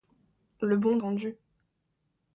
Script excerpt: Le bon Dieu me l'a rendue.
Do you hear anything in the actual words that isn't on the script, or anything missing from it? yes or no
yes